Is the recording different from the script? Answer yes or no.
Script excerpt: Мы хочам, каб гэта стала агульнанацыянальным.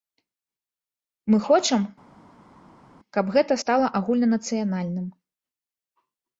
no